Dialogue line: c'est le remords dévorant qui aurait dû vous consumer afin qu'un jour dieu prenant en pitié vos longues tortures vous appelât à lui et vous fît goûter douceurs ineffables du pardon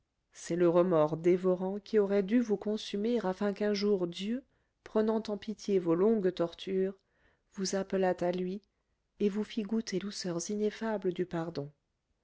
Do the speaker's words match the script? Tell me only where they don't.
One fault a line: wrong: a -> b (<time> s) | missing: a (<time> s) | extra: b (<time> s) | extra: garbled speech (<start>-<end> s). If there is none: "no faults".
no faults